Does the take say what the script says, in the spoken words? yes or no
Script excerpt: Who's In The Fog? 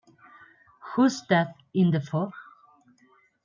no